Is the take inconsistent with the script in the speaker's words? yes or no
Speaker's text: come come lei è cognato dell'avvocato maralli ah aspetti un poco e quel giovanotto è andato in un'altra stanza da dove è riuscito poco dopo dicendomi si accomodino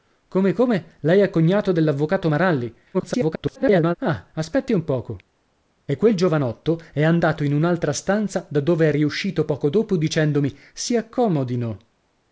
yes